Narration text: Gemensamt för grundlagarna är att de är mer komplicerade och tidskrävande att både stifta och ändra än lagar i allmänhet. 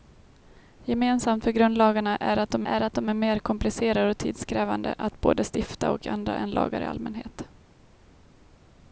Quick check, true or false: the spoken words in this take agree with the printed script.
false